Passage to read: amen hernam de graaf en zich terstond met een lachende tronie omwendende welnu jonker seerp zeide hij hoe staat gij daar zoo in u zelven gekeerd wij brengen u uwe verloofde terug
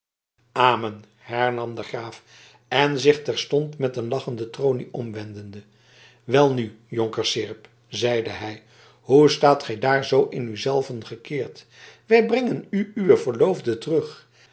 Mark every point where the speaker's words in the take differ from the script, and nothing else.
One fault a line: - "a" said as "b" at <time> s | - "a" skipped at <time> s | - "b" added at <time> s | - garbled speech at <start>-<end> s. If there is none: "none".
none